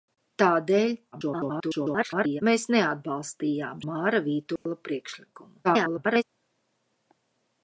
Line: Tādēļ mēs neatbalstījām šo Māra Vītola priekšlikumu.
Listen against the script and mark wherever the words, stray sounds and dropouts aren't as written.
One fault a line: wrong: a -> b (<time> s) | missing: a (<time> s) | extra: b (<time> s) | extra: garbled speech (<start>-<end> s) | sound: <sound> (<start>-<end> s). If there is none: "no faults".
extra: garbled speech (1.1-2.4 s)
missing: šo (3.8 s)
sound: dropout (4.6-4.7 s)
extra: garbled speech (5.6-6.2 s)